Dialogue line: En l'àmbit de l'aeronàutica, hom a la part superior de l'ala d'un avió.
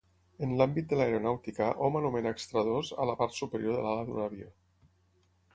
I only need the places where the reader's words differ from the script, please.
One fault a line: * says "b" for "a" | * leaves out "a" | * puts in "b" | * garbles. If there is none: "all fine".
* puts in "anomena extradós"